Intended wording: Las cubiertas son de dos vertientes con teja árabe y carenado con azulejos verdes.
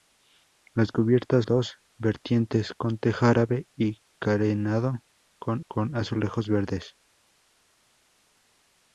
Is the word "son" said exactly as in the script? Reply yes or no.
no